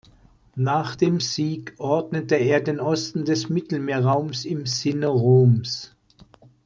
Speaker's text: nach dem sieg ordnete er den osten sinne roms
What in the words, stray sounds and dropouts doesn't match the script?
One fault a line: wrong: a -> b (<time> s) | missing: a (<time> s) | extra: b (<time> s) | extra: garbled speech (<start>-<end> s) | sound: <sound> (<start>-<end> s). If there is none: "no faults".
extra: des mittelmeerraums im (3.2 s)